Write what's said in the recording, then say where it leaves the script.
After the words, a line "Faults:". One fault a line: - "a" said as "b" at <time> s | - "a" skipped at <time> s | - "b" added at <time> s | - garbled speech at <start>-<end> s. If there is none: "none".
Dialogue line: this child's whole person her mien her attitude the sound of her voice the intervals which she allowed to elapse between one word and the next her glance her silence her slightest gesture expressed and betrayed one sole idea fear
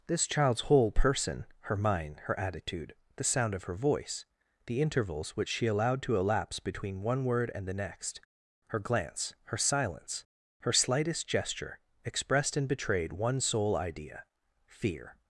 this child's whole person her mind her attitude the sound of her voice the intervals which she allowed to elapse between one word and the next her glance her silence her slightest gesture expressed and betrayed one sole idea fear
Faults:
- "mien" said as "mind" at 1.8 s